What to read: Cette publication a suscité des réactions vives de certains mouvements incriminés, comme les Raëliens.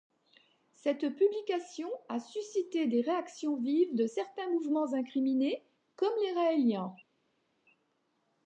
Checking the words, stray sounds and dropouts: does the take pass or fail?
pass